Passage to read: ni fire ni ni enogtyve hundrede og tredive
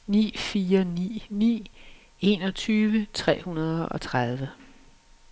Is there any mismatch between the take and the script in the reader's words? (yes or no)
yes